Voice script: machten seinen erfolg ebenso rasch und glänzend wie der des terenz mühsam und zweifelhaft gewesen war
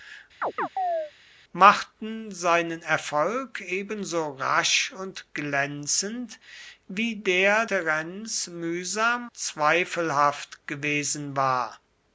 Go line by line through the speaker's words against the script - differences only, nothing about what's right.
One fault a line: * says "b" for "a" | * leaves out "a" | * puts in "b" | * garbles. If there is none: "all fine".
* leaves out "des"
* leaves out "und"